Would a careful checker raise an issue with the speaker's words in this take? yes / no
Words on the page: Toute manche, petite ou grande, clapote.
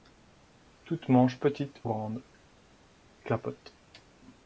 yes